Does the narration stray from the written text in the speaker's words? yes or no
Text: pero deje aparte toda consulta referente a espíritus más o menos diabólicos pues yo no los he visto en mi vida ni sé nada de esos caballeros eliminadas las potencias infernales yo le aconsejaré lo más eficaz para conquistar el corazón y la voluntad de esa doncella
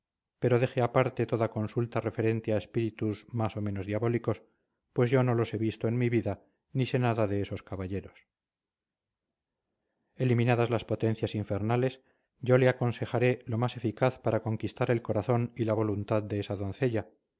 no